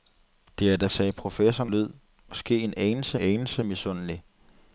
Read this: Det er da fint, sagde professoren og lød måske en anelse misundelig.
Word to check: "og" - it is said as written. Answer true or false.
false